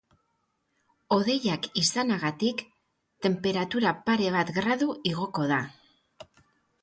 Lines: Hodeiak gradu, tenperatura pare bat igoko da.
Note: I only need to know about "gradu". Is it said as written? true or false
false